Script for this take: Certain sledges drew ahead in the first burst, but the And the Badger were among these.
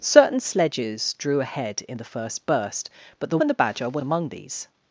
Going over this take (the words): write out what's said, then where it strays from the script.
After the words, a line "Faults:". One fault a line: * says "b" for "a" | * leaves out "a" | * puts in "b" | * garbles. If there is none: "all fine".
Certain sledges drew ahead in the first burst, but the And the Badger were among these.
Faults:
all fine